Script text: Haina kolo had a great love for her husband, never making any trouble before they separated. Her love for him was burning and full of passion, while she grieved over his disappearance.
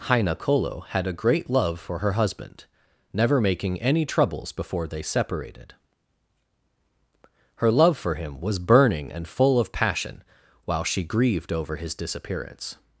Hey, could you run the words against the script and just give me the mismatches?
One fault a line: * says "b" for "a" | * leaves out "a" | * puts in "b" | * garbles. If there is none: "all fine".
* says "troubles" for "trouble"